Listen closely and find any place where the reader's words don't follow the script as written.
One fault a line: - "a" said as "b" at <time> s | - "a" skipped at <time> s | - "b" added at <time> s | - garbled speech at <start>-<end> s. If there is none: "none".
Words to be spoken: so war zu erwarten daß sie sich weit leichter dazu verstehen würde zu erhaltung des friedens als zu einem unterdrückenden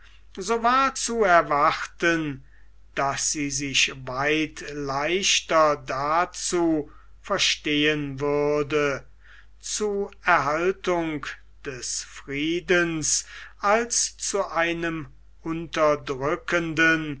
none